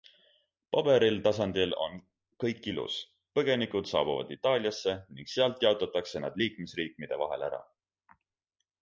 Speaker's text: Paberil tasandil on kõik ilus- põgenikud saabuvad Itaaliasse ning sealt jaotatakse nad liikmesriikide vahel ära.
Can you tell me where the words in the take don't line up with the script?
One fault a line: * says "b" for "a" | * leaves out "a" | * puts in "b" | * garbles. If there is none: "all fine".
all fine